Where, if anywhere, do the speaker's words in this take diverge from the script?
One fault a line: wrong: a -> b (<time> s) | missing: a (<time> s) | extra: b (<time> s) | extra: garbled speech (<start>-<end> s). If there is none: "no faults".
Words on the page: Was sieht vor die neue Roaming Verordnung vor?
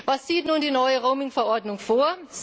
wrong: vor -> nun (0.5 s)